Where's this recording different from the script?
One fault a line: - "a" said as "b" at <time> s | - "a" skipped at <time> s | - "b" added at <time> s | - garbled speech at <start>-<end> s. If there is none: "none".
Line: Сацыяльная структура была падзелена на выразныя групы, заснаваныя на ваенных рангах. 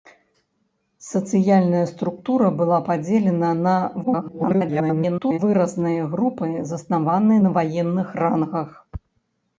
- garbled speech at 4.0-5.4 s